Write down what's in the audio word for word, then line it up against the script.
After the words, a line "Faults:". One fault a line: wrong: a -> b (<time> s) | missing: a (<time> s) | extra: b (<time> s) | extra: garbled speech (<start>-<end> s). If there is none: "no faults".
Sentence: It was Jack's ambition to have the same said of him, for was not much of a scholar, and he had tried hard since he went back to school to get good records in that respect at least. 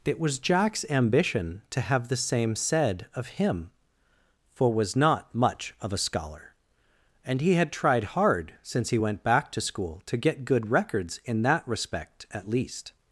It was Jack's ambition to have the same said of him, for was not much of a scholar, and he had tried hard since he went back to school to get good records in that respect at least.
Faults:
no faults